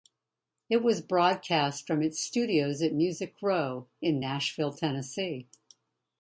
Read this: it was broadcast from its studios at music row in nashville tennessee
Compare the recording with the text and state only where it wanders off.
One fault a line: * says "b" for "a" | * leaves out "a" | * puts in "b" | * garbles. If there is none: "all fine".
all fine